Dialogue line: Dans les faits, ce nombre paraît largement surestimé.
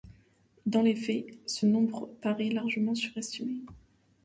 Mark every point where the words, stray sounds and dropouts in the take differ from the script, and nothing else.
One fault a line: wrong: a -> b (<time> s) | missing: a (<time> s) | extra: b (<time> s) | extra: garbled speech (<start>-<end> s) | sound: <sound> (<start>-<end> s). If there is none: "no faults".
no faults